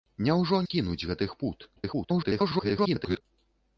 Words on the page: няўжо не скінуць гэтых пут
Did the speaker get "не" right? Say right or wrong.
wrong